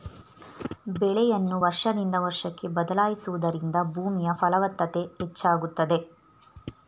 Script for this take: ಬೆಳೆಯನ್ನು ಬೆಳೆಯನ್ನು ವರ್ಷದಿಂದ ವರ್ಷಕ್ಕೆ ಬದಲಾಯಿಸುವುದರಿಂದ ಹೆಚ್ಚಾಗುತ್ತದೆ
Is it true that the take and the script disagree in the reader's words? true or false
true